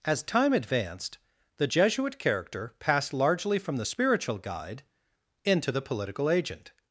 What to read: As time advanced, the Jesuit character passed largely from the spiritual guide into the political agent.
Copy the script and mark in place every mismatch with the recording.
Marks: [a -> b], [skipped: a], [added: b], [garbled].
As time advanced, the Jesuit character passed largely from the spiritual guide into the political agent.